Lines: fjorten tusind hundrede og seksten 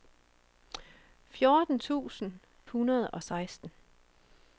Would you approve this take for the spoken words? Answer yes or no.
yes